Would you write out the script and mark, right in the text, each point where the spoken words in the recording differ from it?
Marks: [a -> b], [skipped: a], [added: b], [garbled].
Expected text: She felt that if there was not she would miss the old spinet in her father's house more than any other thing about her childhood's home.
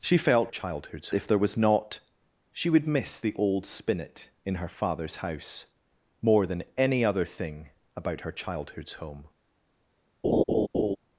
She felt [that -> childhood's] if there was not she would miss the old spinet in her father's house more than any other thing about her childhood's home.